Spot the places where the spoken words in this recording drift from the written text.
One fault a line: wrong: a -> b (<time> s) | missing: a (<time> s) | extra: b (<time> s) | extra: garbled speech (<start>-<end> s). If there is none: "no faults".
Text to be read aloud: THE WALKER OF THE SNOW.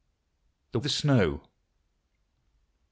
missing: WALKER OF (0.8 s)